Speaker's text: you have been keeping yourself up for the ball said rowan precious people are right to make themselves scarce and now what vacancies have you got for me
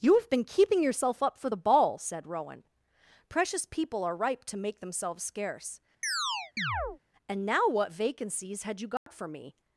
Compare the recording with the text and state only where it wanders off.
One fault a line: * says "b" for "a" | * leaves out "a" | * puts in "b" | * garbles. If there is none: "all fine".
* says "ripe" for "right"
* says "had" for "have"